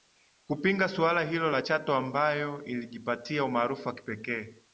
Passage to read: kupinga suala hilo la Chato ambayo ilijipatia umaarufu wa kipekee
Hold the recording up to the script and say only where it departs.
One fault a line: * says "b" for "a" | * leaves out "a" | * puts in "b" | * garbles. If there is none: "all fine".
all fine